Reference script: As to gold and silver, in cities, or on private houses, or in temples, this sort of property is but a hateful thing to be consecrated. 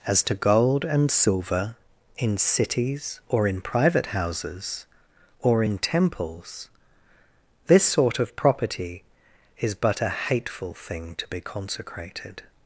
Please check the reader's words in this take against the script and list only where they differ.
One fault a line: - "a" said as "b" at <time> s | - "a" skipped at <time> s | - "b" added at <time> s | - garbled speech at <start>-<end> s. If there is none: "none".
- "on" said as "in" at 3.5 s